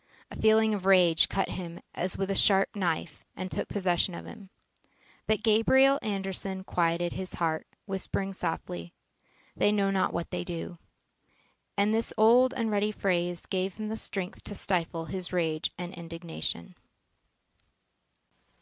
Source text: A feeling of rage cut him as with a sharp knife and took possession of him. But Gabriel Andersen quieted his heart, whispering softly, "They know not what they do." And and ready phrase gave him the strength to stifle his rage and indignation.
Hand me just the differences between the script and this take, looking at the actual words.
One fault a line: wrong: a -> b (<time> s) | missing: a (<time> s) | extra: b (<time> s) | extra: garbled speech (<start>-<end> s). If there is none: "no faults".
extra: this old (11.9 s)